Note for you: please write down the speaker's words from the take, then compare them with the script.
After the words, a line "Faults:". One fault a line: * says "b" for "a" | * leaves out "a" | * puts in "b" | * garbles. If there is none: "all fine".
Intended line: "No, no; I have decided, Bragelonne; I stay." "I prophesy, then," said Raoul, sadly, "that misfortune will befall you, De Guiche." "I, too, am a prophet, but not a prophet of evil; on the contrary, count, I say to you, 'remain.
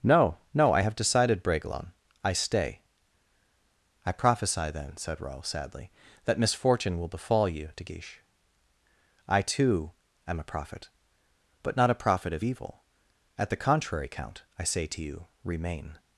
"No, no; I have decided, Bragelonne; I stay." "I prophesy, then," said Raoul, sadly, "that misfortune will befall you, De Guiche." "I, too, am a prophet, but not a prophet of evil; at the contrary, count, I say to you, 'remain.
Faults:
* says "at" for "on"